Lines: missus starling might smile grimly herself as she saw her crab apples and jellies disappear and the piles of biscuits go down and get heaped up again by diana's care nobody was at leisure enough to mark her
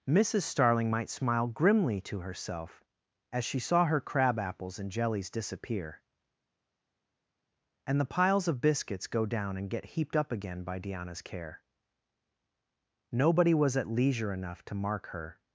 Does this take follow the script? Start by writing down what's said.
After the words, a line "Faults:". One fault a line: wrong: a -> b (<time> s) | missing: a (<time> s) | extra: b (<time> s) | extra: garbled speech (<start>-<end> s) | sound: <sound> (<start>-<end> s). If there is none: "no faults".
missus starling might smile grimly to herself as she saw her crab apples and jellies disappear and the piles of biscuits go down and get heaped up again by diana's care nobody was at leisure enough to mark her
Faults:
extra: to (2.0 s)